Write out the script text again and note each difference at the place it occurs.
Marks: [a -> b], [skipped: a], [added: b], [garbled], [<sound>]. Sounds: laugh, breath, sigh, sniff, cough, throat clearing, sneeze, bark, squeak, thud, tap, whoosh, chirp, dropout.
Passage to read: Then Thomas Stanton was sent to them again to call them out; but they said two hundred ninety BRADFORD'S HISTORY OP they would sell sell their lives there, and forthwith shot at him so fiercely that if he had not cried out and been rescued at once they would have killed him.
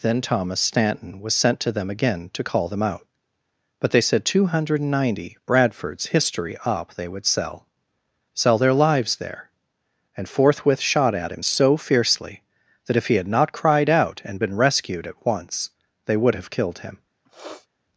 Then Thomas Stanton was sent to them again to call them out; but they said two hundred ninety BRADFORD'S HISTORY OP they would sell sell their lives there, and forthwith shot at him so fiercely that if he had not cried out and been rescued at once they would have killed him. [sniff]